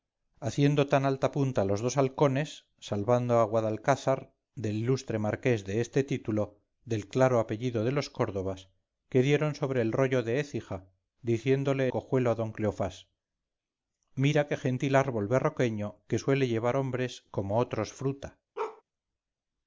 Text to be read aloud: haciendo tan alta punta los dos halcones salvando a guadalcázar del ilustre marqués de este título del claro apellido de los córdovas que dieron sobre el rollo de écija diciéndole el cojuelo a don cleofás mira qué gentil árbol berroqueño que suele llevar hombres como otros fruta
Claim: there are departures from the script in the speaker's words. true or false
true